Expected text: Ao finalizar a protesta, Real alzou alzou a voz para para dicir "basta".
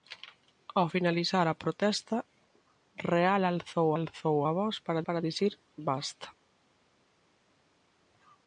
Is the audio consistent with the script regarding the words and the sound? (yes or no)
yes